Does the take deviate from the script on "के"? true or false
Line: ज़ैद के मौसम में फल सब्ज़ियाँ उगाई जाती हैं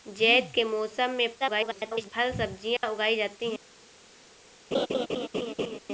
false